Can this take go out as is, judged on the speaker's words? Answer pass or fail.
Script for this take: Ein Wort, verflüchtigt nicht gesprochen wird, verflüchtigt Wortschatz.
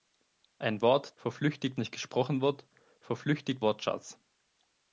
pass